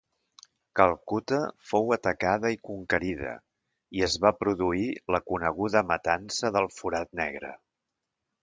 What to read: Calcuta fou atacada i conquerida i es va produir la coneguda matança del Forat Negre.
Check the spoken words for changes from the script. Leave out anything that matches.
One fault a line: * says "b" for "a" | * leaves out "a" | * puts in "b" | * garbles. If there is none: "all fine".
all fine